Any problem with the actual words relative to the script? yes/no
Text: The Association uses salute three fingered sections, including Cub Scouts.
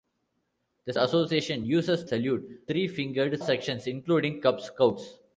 no